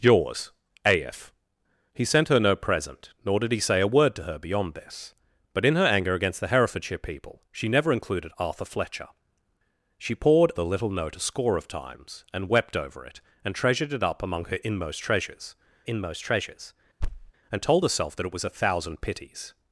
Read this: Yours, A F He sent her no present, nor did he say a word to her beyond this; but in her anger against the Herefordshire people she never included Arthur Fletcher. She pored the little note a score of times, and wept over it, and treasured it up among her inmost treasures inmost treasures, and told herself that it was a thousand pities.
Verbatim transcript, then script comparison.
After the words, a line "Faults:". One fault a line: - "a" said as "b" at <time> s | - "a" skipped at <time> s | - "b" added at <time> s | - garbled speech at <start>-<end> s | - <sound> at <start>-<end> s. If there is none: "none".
Yours, A F He sent her no present, nor did he say a word to her beyond this; but in her anger against the Herefordshire people she never included Arthur Fletcher. She pored the little note a score of times, and wept over it, and treasured it up among her inmost treasures inmost treasures, and told herself that it was a thousand pities.
Faults:
- thud at 17.0-17.3 s